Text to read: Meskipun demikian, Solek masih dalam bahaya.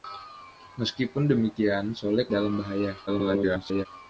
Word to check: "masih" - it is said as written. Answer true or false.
false